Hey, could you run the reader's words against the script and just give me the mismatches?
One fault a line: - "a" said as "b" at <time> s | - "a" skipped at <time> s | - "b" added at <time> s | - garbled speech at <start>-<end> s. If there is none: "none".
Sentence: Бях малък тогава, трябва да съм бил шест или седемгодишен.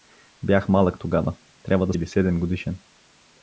- "съм бил шест" skipped at 1.9 s